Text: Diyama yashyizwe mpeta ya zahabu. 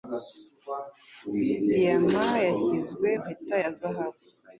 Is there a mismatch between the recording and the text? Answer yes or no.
no